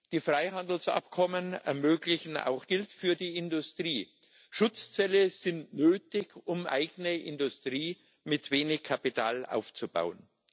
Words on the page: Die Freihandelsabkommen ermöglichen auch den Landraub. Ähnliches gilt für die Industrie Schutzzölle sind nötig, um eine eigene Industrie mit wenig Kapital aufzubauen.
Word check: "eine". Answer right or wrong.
wrong